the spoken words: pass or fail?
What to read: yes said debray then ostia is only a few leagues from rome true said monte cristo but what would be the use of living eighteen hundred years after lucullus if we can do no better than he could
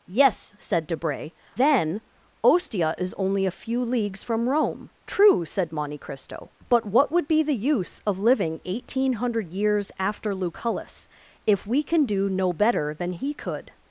pass